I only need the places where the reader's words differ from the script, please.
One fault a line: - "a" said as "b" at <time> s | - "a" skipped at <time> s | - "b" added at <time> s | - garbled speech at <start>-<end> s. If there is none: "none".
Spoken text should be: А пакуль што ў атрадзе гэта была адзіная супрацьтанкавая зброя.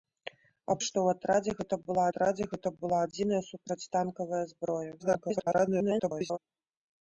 - "пакуль" skipped at 0.8 s
- "атрадзе гэта была" added at 2.1 s
- garbled speech at 5.0-6.4 s